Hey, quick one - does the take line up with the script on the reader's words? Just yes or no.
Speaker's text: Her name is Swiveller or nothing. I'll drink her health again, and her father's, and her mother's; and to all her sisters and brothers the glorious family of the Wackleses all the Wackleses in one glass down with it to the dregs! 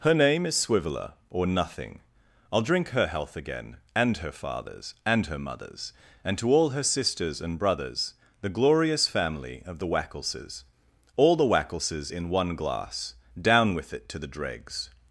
yes